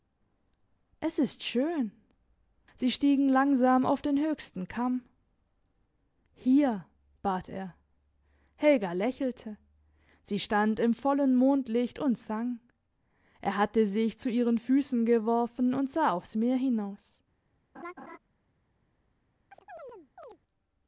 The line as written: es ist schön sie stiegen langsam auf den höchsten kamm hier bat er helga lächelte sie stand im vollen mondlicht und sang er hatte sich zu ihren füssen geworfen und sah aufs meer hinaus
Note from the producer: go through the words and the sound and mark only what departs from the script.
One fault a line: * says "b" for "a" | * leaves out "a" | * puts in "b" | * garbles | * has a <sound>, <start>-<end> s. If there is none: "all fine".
* has a laugh, 17.7-18.2 s
* has a chirp, 19.5-20.4 s